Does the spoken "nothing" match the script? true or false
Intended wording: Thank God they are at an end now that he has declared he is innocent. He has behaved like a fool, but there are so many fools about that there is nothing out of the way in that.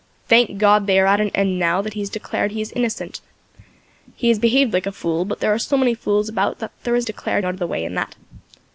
false